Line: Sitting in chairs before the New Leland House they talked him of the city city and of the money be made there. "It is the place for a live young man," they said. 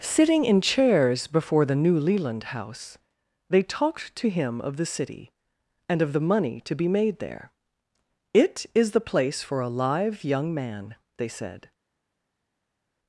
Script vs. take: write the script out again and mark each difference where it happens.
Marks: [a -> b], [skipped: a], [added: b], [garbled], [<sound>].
Sitting in chairs before the New Leland House they talked [added: to] him of the city [skipped: city] and of the money [added: to] be made there. "It is the place for a live young man," they said.